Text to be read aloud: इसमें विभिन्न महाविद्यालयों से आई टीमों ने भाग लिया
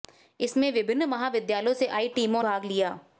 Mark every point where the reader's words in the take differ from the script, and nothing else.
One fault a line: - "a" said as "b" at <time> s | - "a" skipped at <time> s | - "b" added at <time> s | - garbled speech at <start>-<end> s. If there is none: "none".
- "ने" skipped at 2.4 s